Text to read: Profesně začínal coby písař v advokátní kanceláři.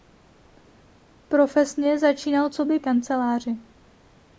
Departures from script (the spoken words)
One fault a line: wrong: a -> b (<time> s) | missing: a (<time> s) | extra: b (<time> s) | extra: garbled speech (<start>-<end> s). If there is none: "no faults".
missing: písař v advokátní (2.8 s)